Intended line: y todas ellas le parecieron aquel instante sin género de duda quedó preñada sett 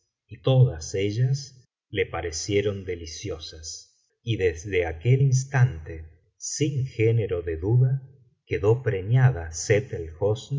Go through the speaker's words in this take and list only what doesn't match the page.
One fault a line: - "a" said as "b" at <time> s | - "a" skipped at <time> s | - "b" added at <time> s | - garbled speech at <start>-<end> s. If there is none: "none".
- "deliciosas y desde" added at 2.9 s